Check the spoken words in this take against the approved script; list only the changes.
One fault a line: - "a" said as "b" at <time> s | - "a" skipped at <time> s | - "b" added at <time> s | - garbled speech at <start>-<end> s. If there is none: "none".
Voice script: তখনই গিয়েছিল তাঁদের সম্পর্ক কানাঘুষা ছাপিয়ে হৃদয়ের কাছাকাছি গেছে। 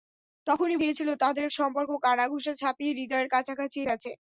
none